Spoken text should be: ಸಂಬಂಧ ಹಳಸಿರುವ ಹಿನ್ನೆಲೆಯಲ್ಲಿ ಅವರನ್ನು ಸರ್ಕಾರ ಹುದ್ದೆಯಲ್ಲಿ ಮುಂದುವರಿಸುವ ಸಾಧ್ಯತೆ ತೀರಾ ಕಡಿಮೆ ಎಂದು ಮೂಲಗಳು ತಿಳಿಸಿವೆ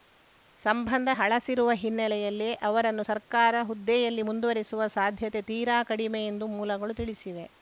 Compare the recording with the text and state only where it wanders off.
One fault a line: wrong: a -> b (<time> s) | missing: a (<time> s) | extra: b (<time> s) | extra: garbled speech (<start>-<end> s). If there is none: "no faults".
no faults